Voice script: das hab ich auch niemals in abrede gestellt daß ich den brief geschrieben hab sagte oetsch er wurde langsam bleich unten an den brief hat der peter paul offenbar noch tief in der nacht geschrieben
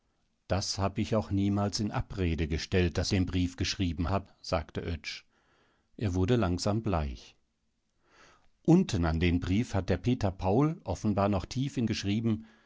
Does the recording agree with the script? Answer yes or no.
no